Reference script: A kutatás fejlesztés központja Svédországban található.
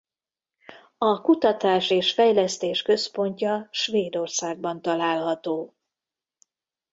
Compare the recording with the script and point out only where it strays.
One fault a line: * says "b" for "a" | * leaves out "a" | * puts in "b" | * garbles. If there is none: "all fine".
* puts in "és"